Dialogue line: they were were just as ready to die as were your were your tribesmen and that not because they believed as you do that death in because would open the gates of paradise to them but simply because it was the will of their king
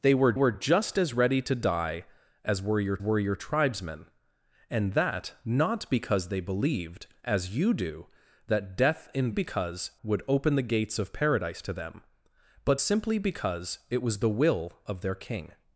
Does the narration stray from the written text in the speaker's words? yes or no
no